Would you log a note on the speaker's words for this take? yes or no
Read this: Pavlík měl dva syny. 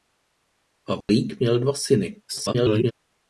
yes